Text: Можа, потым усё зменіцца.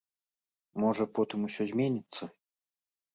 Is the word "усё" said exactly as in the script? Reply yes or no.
yes